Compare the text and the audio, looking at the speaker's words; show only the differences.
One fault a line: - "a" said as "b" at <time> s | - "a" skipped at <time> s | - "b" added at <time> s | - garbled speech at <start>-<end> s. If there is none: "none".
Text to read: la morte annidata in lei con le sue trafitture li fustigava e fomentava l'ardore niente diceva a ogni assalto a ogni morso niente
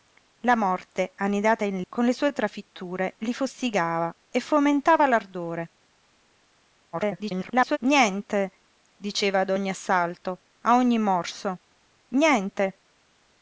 - "lei" skipped at 1.8 s
- garbled speech at 6.9-7.8 s